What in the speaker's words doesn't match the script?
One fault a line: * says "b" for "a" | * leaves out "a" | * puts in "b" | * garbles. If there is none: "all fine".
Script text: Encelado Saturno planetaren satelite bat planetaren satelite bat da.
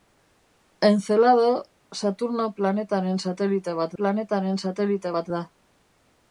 all fine